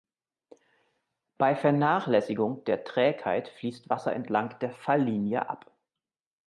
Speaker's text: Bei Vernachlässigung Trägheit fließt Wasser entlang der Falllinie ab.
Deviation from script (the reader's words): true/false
true